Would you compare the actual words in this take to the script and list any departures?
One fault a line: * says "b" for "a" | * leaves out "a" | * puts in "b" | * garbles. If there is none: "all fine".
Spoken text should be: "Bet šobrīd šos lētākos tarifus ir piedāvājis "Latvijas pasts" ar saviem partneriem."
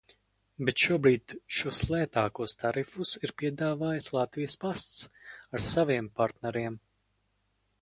all fine